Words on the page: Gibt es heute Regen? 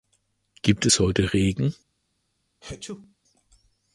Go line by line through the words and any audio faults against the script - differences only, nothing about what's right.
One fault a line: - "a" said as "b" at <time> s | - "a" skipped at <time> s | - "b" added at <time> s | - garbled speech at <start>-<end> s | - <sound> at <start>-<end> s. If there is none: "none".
- sneeze at 2.6-3.1 s